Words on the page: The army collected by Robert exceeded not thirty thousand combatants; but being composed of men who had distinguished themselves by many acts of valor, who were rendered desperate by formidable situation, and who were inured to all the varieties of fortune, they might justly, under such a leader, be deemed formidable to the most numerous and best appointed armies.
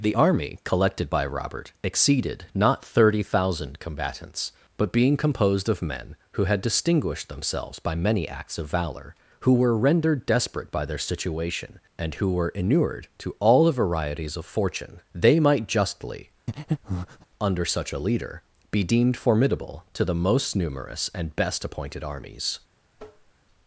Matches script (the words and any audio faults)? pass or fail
fail